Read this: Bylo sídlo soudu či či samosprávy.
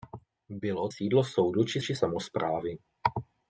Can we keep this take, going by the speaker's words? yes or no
yes